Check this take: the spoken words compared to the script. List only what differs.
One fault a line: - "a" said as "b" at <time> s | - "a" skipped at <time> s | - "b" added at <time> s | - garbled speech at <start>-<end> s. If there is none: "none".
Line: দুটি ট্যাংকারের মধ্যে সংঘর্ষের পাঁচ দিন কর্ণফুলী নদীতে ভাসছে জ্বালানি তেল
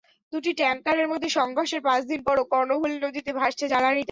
- "পরও" added at 2.2 s